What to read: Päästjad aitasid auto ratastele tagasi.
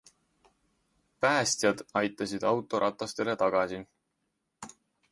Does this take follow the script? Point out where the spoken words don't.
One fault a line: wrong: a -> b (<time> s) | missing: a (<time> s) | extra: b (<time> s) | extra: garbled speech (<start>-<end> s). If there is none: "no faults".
no faults